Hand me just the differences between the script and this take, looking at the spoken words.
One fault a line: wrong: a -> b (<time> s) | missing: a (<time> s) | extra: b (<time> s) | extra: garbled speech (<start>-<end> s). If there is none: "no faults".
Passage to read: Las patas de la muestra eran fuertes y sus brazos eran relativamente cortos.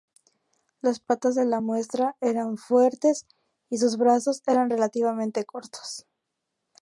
no faults